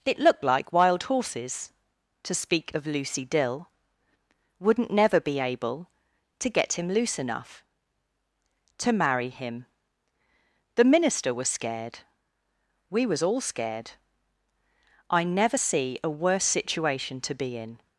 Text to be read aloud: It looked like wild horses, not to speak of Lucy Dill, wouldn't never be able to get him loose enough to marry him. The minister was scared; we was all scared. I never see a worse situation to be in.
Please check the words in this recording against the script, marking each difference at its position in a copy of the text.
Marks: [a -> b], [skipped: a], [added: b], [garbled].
It looked like wild horses, [skipped: not] to speak of Lucy Dill, wouldn't never be able to get him loose enough to marry him. The minister was scared; we was all scared. I never see a worse situation to be in.